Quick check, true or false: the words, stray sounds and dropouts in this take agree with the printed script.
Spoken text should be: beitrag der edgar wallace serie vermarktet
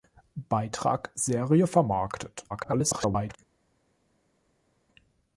false